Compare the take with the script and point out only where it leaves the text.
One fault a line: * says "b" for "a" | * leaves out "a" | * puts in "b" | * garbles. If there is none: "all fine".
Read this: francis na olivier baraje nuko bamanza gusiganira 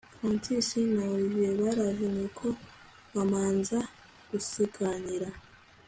all fine